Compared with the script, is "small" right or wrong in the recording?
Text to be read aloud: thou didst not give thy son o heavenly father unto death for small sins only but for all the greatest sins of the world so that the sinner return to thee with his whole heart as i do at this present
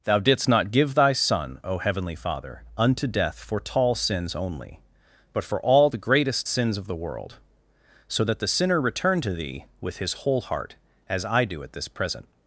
wrong